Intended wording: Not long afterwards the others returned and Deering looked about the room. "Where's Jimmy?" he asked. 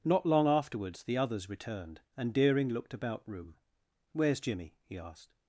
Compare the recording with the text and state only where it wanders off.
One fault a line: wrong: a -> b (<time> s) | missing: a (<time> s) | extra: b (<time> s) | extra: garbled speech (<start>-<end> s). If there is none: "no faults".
missing: the (3.3 s)